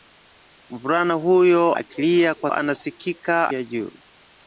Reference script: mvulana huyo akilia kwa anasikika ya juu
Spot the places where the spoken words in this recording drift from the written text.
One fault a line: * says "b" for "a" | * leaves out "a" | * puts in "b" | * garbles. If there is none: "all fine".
all fine